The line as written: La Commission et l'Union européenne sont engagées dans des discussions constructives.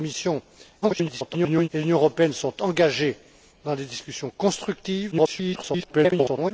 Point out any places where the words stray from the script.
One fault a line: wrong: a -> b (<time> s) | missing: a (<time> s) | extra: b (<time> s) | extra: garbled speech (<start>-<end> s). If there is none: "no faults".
extra: garbled speech (0.8-1.7 s)
extra: garbled speech (5.1-6.5 s)